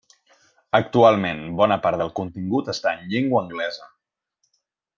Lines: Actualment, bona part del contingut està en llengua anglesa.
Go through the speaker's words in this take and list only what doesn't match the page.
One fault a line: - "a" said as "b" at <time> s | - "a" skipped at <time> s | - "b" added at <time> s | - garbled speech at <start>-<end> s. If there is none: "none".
none